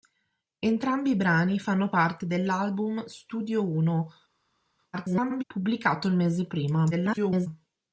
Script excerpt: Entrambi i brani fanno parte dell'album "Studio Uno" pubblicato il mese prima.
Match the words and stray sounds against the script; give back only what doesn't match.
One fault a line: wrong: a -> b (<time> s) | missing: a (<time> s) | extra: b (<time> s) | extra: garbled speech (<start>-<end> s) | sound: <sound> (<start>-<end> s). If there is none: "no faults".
extra: garbled speech (4.9-5.4 s)
extra: garbled speech (6.9-7.5 s)